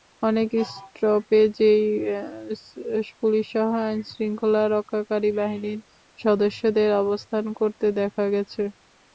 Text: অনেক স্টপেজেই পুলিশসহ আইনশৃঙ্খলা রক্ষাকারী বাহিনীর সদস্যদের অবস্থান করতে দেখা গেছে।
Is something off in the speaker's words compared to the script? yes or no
no